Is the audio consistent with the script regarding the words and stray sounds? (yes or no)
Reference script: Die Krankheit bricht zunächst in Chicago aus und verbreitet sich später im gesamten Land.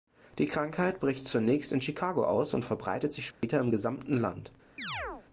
no